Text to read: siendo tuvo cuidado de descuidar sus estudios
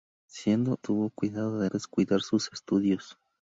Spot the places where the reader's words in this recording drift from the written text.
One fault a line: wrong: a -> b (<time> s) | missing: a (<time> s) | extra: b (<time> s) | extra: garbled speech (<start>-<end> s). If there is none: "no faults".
no faults